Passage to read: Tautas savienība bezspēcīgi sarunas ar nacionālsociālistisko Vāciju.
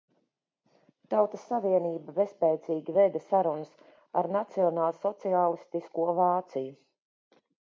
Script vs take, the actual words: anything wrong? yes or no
yes